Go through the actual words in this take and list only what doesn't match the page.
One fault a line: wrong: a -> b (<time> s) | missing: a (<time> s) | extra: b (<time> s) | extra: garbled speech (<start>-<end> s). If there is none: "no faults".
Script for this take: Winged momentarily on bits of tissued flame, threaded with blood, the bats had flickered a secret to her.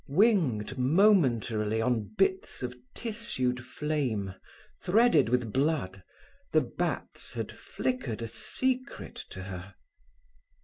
no faults